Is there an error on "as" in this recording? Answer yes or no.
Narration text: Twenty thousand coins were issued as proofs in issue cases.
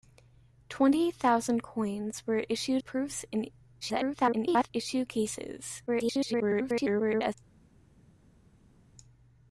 yes